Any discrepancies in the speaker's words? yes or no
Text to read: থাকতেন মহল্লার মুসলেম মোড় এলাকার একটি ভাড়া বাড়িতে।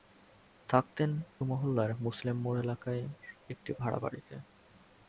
no